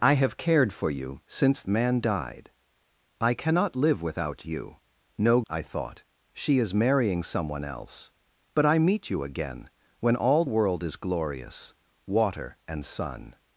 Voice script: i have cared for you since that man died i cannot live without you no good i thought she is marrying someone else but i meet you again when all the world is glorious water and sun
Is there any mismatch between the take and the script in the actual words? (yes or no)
yes